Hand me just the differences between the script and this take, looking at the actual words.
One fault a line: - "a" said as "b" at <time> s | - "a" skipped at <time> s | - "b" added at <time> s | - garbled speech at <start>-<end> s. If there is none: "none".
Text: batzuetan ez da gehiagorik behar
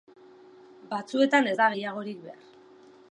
none